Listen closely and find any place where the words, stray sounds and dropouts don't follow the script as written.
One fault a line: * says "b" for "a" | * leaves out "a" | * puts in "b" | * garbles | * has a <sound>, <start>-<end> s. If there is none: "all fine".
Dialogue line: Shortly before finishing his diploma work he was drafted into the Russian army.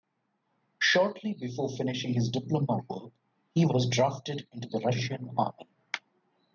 all fine